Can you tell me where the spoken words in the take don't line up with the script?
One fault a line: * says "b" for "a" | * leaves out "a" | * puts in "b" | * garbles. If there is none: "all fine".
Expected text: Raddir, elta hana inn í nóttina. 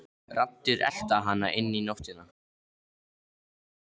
all fine